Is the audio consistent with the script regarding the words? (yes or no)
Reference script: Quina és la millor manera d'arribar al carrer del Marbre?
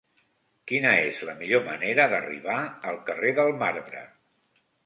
yes